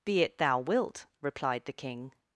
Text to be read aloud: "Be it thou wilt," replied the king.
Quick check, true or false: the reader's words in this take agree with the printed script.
true